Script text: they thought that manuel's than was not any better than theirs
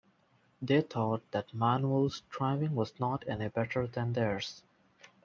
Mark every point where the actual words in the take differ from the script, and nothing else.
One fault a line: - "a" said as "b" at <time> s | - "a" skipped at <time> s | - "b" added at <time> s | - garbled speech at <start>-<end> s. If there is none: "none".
- "than" said as "driving" at 2.3 s